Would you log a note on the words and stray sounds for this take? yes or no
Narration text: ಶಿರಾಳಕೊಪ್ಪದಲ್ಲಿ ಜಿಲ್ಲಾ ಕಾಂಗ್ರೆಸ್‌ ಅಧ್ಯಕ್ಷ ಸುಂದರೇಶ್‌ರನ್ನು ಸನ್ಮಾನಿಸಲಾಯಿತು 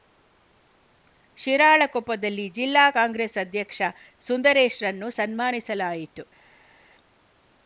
no